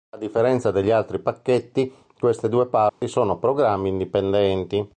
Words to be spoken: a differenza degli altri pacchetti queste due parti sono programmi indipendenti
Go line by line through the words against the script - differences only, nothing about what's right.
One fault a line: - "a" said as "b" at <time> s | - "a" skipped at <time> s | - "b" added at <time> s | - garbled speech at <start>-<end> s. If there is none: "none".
none